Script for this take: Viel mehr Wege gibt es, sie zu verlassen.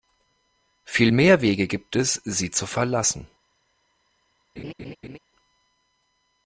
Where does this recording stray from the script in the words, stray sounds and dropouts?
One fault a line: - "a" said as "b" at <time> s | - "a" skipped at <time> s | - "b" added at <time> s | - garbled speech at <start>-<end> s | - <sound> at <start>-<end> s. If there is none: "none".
- laugh at 4.6-5.2 s